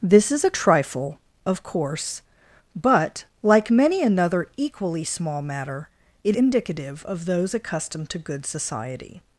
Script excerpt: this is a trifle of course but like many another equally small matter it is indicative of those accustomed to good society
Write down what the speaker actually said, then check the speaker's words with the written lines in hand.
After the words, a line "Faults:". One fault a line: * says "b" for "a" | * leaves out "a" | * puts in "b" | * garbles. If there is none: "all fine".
this is a trifle of course but like many another equally small matter it indicative of those accustomed to good society
Faults:
* leaves out "is"